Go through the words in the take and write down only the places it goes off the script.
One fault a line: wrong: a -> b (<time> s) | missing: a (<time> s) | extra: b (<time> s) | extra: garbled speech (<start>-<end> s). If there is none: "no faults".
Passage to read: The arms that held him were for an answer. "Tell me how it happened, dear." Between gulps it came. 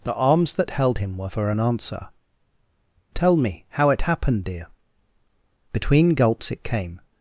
no faults